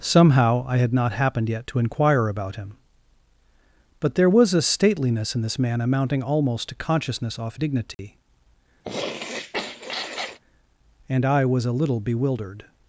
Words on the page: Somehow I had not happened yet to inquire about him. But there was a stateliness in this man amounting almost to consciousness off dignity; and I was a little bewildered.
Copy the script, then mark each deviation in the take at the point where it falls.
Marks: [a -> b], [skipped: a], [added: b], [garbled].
Somehow I had not happened yet to inquire about him. But there was a stateliness in this man amounting almost to consciousness off dignity; and I was a little bewildered.